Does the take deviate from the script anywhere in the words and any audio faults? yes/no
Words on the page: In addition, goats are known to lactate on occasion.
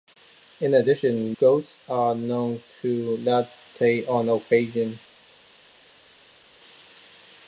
no